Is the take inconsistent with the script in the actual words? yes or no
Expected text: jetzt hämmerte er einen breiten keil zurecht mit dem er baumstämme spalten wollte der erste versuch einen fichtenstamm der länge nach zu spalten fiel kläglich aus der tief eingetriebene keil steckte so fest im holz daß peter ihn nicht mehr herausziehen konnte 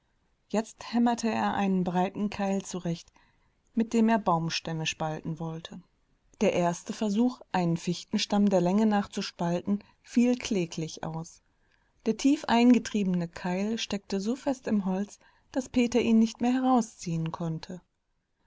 no